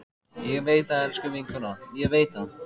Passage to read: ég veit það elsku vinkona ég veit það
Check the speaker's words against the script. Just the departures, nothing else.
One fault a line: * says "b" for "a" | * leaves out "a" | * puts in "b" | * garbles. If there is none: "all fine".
all fine